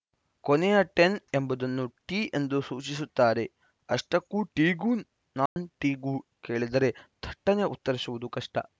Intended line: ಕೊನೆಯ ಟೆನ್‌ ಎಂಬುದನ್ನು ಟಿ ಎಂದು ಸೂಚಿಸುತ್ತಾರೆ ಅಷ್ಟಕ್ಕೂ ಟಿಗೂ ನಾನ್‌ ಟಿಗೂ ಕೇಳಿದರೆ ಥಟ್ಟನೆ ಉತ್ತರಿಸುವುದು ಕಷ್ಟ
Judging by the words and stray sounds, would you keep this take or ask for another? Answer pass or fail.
fail